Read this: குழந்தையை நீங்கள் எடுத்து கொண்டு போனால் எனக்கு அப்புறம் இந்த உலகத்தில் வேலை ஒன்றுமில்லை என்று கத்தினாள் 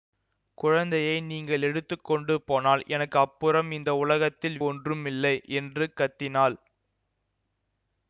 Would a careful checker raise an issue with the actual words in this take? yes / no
yes